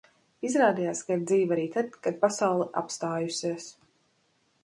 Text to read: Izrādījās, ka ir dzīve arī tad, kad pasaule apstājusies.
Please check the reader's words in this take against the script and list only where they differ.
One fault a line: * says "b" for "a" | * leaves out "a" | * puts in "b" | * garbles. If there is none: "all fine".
all fine